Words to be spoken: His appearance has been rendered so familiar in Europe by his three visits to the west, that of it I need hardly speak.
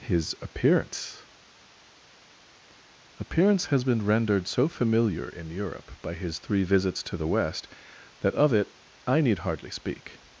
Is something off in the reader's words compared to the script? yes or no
yes